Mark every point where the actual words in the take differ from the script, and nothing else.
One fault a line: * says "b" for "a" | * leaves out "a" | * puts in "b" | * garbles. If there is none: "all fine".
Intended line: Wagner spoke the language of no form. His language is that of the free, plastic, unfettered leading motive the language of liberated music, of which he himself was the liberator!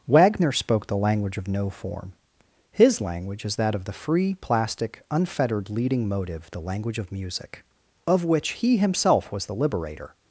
* leaves out "liberated"